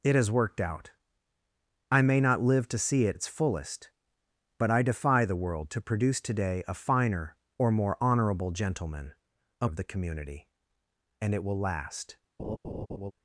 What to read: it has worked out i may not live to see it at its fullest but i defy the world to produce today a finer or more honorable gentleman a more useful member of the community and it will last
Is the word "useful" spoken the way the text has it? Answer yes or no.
no